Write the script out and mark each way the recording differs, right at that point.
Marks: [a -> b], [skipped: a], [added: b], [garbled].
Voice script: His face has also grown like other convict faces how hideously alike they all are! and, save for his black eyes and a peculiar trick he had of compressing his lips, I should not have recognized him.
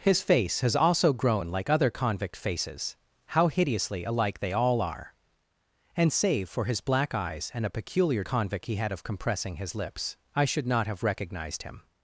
His face has also grown like other convict faces how hideously alike they all are! and, save for his black eyes and a peculiar [trick -> convict] he had of compressing his lips, I should not have recognized him.